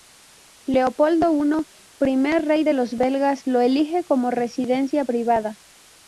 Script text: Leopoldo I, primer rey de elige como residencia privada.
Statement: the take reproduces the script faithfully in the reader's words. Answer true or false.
false